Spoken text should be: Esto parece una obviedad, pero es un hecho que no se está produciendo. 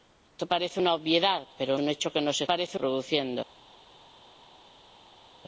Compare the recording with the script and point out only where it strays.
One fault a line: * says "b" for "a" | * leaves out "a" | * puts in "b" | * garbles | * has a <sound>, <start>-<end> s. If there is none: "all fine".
* leaves out "es"
* says "parece" for "está"